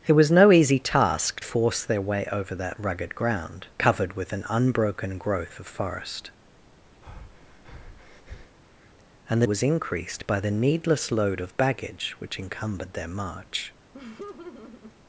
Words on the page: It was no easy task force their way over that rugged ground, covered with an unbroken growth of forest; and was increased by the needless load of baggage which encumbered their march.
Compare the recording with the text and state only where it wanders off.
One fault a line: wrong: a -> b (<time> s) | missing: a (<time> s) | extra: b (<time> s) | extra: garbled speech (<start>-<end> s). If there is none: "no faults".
no faults